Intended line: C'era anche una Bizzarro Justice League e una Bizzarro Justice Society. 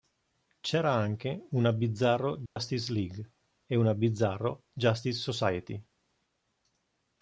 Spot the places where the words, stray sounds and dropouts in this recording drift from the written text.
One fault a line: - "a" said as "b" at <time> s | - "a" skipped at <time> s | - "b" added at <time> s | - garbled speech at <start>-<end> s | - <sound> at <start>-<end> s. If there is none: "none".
- dropout at 2.5-2.6 s